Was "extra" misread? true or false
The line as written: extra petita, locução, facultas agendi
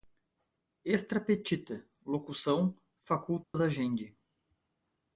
false